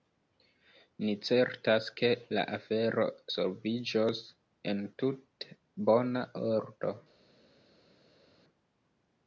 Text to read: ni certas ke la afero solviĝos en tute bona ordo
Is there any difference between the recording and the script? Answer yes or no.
no